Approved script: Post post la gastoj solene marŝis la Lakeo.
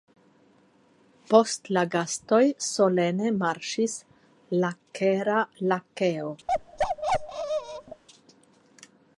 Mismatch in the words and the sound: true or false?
true